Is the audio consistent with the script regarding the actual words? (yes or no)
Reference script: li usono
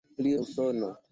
yes